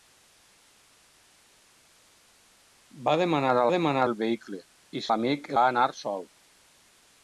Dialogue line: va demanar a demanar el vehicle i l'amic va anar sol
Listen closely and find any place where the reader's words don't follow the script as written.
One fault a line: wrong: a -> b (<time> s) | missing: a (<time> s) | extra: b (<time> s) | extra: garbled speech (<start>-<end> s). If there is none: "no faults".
no faults